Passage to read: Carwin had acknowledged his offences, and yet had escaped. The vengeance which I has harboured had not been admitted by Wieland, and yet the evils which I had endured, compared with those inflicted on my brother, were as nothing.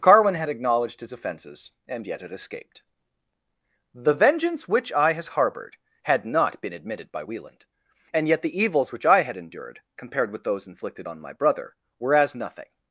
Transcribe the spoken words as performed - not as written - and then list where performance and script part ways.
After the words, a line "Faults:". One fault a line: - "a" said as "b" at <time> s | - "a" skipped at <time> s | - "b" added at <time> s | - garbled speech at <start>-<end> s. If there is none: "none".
Carwin had acknowledged his offences, and yet had escaped. The vengeance which I has harboured had not been admitted by Wieland, and yet the evils which I had endured, compared with those inflicted on my brother, were as nothing.
Faults:
none